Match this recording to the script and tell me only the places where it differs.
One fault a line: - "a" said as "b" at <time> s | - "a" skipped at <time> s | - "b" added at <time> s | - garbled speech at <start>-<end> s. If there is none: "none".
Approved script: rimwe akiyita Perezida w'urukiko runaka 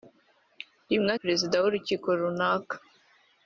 - "akiyita" skipped at 1.1 s